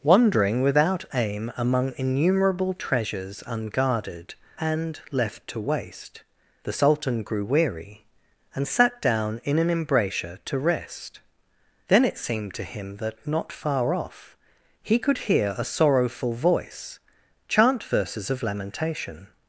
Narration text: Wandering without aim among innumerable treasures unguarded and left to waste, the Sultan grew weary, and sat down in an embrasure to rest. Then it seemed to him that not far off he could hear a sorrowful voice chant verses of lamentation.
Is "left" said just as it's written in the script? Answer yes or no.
yes